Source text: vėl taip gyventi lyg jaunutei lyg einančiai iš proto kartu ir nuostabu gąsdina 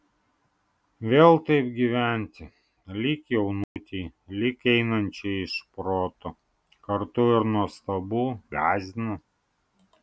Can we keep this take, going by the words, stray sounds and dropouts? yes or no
no